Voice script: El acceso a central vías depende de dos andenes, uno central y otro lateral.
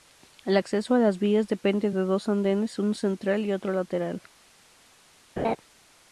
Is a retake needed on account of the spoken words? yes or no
yes